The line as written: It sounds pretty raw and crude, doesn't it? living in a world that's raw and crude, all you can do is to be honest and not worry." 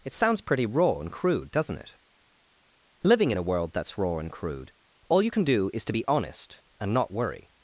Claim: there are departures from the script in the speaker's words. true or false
false